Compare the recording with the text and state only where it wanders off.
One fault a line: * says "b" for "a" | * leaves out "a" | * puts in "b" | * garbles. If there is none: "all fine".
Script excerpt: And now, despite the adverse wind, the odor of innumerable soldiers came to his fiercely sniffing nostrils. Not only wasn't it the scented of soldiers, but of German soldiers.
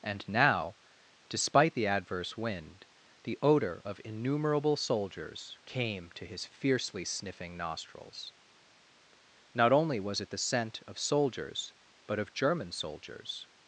* says "was" for "wasn't"
* says "scent" for "scented"